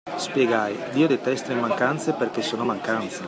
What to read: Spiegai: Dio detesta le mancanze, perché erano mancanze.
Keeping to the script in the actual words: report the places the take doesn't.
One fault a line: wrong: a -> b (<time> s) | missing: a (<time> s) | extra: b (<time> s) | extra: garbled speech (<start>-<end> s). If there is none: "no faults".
wrong: erano -> sono (2.4 s)